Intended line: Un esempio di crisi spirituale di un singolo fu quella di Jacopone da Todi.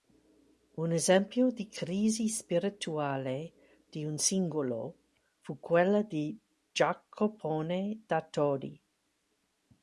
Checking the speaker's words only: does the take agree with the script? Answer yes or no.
yes